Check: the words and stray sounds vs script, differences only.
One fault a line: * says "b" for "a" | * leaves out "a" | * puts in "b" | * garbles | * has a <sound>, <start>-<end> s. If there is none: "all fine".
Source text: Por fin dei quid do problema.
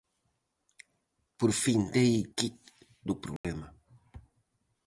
* has a dropout, 3.4-3.4 s